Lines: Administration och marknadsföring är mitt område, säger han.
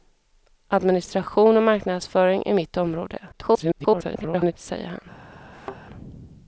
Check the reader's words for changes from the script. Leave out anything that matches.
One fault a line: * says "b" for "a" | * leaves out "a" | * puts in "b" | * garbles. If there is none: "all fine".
* garbles